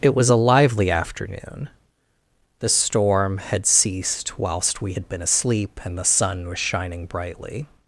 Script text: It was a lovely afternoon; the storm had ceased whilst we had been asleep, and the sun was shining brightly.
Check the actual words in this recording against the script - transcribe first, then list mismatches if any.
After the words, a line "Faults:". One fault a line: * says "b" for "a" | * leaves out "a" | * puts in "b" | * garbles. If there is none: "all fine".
It was a lively afternoon; the storm had ceased whilst we had been asleep, and the sun was shining brightly.
Faults:
* says "lively" for "lovely"